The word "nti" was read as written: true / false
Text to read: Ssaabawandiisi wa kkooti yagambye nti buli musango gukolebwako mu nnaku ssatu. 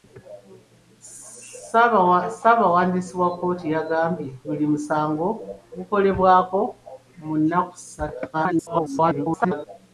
false